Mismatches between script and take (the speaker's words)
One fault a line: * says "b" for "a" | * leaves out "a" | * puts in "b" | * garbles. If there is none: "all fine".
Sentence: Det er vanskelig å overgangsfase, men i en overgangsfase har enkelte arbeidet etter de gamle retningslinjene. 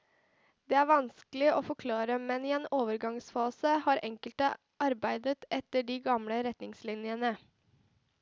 * says "forklare" for "overgangsfase"